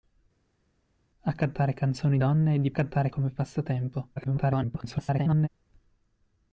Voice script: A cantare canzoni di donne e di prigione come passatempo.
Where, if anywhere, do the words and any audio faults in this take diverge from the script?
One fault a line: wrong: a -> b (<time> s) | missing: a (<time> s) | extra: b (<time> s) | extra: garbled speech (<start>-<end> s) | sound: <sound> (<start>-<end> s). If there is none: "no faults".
missing: di (2.2 s)
wrong: prigione -> cantare (2.7 s)
extra: garbled speech (4.2-5.5 s)